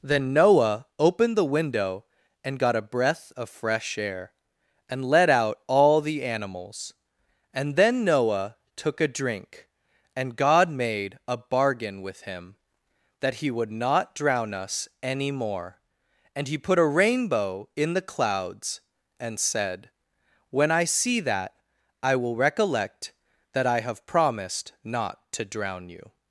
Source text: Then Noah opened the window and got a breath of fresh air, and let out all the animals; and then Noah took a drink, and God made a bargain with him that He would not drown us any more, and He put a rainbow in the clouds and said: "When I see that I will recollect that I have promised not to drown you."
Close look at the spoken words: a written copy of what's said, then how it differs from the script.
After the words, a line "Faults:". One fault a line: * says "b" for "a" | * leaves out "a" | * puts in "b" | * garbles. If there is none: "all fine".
Then Noah opened the window and got a breath of fresh air, and let out all the animals; and then Noah took a drink, and God made a bargain with him that He would not drown us any more, and He put a rainbow in the clouds and said: "When I see that I will recollect that I have promised not to drown you."
Faults:
all fine